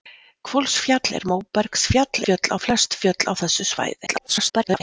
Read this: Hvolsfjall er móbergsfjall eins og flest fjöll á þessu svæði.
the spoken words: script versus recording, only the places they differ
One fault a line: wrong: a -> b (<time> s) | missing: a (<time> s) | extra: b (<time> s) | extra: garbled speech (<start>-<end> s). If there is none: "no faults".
wrong: eins -> fjöll (2.3 s)
extra: garbled speech (4.1-4.8 s)